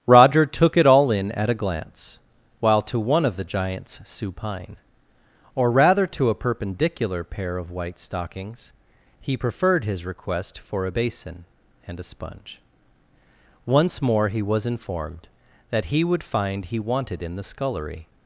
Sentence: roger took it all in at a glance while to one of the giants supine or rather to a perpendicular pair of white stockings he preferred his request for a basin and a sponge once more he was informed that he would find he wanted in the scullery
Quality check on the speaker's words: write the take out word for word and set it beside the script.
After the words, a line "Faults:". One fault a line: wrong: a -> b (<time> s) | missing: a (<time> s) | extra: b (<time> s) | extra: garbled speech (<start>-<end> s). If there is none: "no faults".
roger took it all in at a glance while to one of the giants supine or rather to a perpendicular pair of white stockings he preferred his request for a basin and a sponge once more he was informed that he would find he wanted in the scullery
Faults:
no faults